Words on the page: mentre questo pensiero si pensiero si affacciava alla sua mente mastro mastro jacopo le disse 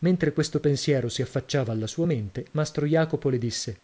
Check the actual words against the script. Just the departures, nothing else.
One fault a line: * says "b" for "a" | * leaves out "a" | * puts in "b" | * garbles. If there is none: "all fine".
* leaves out "pensiero si"
* leaves out "mastro"